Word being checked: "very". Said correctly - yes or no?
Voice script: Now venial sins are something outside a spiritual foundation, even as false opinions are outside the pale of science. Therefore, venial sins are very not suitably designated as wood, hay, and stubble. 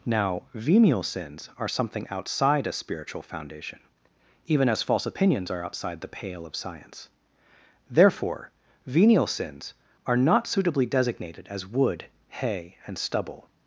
no